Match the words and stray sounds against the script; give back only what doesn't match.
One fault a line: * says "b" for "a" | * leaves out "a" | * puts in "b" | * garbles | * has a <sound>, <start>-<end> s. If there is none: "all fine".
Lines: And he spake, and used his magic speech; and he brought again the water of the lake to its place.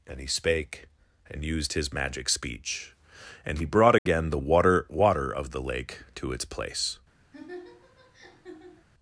* has a dropout, 4.0-4.1 s
* puts in "water"
* has a laugh, 7.3-8.9 s